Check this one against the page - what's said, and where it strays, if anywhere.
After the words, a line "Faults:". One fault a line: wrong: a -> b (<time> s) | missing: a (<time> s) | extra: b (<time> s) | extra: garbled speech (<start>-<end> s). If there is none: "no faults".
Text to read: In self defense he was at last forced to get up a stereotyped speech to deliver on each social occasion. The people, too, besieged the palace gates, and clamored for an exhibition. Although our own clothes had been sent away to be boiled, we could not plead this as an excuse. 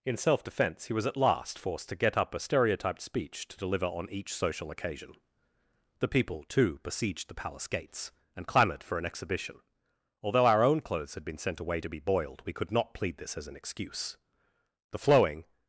In self defense he was at last forced to get up a stereotyped speech to deliver on each social occasion. The people, too, besieged the palace gates, and clamored for an exhibition. Although our own clothes had been sent away to be boiled, we could not plead this as an excuse. The flowing
Faults:
extra: The flowing (14.9 s)